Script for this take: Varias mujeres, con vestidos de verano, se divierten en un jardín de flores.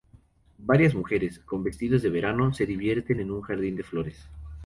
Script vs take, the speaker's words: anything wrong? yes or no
no